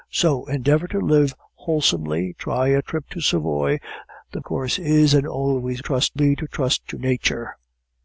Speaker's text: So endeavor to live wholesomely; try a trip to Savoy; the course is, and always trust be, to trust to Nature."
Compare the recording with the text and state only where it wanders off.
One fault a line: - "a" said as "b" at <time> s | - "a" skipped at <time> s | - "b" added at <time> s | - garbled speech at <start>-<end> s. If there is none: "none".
none